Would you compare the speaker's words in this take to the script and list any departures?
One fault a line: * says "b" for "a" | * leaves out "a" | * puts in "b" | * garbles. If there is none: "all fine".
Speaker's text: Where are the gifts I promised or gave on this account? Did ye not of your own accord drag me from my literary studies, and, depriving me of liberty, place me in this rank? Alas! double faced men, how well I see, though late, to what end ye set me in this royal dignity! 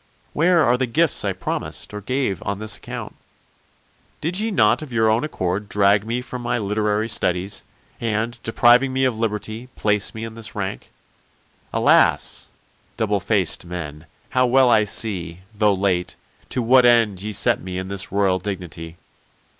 all fine